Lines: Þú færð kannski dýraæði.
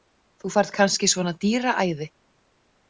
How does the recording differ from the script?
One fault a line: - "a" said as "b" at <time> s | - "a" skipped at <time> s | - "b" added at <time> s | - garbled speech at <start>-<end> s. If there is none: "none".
- "svona" added at 1.1 s